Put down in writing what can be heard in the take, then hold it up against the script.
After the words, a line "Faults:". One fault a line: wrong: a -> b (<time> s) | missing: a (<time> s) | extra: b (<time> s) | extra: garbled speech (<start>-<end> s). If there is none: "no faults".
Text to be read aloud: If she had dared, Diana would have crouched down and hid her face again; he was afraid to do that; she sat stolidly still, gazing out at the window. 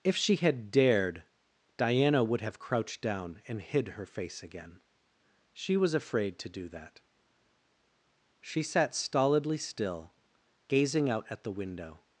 If she had dared, Diana would have crouched down and hid her face again; she was afraid to do that; she sat stolidly still, gazing out at the window.
Faults:
wrong: he -> she (5.5 s)